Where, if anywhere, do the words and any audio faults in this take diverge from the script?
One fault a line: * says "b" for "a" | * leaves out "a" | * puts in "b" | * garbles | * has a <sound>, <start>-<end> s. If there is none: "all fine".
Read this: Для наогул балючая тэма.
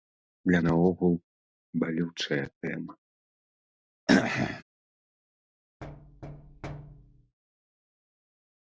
* has a throat clearing, 4.1-4.6 s
* has a thud, 5.8-7.4 s